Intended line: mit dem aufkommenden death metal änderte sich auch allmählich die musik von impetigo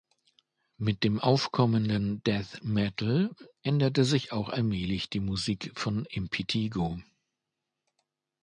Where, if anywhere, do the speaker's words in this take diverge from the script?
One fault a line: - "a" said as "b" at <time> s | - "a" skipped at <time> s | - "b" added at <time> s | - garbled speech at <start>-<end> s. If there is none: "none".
none